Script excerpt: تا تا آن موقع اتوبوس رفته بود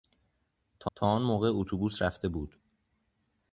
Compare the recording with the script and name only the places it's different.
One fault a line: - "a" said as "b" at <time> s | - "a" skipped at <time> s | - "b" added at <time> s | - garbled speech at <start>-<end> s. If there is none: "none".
none